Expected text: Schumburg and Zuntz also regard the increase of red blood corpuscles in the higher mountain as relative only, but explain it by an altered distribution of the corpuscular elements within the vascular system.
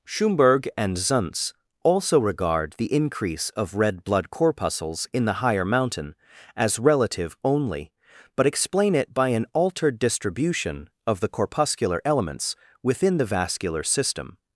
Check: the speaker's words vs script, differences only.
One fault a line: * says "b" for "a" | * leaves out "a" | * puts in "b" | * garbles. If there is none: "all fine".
all fine